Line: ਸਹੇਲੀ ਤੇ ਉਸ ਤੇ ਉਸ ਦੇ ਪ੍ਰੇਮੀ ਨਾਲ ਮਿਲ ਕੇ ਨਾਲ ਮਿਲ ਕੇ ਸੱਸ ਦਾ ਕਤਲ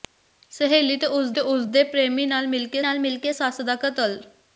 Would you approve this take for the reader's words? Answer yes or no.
yes